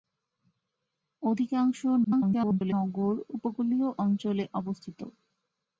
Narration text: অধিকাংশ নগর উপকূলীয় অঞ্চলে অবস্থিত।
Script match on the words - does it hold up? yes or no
no